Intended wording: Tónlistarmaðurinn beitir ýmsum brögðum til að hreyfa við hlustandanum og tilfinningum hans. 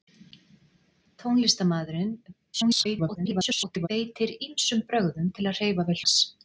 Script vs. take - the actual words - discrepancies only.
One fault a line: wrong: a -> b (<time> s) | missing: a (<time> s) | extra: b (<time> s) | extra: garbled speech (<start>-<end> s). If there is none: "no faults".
extra: garbled speech (2.5-3.9 s)
missing: hlustandanum og tilfinningum (6.0 s)